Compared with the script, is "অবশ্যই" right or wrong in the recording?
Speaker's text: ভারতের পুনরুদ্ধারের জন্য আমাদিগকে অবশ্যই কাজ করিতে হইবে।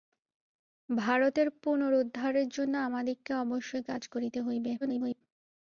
right